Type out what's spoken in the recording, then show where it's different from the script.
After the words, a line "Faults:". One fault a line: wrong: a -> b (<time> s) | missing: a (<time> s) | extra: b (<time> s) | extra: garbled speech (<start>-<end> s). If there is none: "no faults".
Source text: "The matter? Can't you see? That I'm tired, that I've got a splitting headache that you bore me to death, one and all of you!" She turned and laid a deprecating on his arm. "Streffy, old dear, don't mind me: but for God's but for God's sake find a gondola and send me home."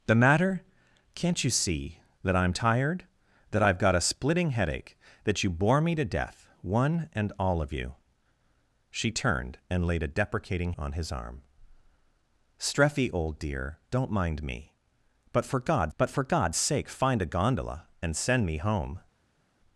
"The matter? Can't you see? That I'm tired, that I've got a splitting headache that you bore me to death, one and all of you!" She turned and laid a deprecating on his arm. "Streffy, old dear, don't mind me: but for God's but for God's sake find a gondola and send me home."
Faults:
no faults